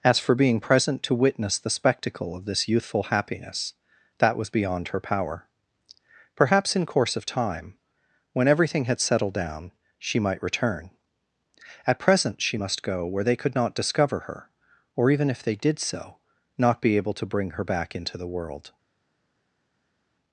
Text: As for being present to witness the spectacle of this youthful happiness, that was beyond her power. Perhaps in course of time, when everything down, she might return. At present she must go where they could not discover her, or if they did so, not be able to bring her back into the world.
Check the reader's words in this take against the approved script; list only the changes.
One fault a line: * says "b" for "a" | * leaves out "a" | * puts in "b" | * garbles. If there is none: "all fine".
* puts in "had settled"
* puts in "even"